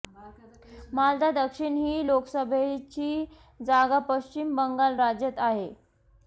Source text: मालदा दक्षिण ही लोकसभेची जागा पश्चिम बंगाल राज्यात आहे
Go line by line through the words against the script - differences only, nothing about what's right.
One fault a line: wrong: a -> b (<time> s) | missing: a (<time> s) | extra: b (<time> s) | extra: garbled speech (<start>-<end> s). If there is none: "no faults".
no faults